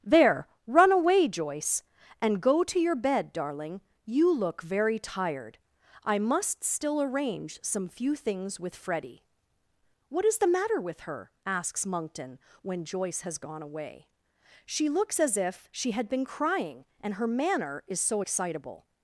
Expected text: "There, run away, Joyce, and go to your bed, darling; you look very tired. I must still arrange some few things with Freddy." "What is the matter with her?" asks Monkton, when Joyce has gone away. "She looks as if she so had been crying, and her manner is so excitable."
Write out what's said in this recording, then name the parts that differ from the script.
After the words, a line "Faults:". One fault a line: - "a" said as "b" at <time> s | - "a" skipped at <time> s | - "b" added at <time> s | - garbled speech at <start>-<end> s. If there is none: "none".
"There, run away, Joyce, and go to your bed, darling; you look very tired. I must still arrange some few things with Freddy." "What is the matter with her?" asks Monkton, when Joyce has gone away. "She looks as if she had been crying, and her manner is so excitable."
Faults:
- "so" skipped at 15.9 s